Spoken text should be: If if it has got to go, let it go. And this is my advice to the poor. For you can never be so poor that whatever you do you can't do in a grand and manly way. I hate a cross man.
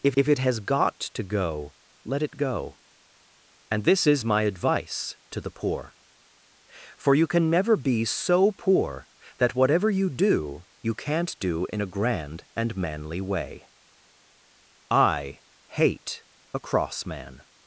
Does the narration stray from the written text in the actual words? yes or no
no